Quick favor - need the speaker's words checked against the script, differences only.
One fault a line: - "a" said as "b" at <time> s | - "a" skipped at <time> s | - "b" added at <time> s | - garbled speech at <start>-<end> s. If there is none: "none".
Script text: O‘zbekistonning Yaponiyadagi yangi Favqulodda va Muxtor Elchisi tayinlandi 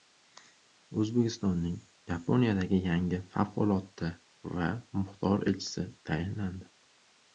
none